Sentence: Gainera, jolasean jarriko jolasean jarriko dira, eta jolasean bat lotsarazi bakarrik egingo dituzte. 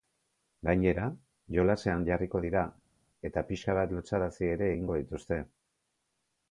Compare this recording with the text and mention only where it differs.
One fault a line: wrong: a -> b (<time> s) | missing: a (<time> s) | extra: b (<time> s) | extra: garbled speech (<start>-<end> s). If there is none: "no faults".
missing: jolasean jarriko (2.4 s)
wrong: jolasean -> pixka (3.5 s)
wrong: bakarrik -> ere (4.6 s)